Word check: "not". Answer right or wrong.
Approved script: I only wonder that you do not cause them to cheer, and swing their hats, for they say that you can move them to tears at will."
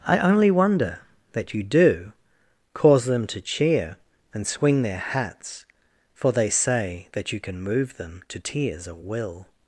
wrong